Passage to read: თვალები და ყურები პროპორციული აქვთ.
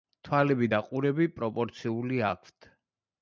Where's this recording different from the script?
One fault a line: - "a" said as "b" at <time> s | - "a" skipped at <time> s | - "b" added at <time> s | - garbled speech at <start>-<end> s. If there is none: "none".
none